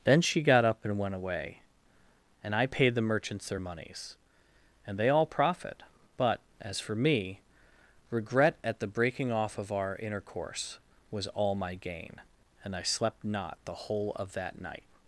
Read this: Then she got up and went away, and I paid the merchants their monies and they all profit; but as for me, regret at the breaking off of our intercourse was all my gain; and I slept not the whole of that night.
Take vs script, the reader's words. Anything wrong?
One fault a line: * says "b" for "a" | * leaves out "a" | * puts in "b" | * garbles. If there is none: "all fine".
all fine